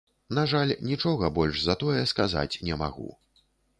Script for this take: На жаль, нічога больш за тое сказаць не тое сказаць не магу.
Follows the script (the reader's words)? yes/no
no